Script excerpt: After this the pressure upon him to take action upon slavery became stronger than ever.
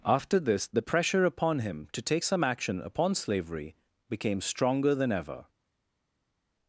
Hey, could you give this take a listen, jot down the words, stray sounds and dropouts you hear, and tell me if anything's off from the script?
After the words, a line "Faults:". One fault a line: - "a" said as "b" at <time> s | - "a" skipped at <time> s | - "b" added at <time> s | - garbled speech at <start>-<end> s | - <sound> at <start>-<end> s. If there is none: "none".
After this the pressure upon him to take some action upon slavery became stronger than ever.
Faults:
- "some" added at 2.2 s